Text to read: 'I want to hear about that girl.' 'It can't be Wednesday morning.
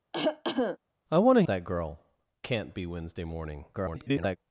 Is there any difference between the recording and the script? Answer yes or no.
yes